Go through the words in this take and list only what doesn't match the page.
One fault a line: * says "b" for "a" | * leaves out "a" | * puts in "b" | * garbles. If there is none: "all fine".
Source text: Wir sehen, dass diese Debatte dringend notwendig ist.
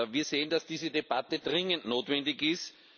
all fine